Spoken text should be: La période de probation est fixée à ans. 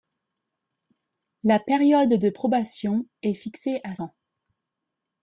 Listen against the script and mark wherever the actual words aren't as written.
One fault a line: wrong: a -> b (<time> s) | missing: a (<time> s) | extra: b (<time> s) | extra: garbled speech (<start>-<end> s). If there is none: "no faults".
no faults